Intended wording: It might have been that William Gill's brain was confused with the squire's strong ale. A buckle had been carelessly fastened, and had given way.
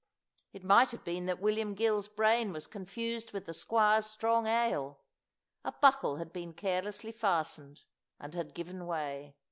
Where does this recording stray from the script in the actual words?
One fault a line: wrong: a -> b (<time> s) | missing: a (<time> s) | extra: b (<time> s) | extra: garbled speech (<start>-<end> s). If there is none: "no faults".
no faults